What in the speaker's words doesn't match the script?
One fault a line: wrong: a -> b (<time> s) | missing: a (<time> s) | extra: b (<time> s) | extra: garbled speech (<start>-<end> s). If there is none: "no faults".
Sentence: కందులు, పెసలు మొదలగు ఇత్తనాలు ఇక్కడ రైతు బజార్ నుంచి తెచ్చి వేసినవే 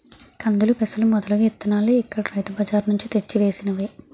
no faults